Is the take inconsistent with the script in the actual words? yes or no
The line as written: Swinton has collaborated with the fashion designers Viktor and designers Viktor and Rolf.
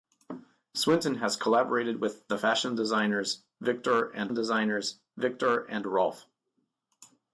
no